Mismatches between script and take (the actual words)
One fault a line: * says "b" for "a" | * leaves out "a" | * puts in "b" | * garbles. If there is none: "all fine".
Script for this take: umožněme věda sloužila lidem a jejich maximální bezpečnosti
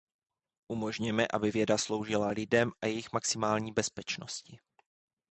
* puts in "aby"